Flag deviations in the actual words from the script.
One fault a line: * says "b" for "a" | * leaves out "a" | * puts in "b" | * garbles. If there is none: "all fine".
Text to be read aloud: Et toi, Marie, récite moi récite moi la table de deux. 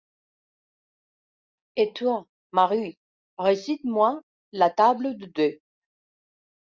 * leaves out "récite moi"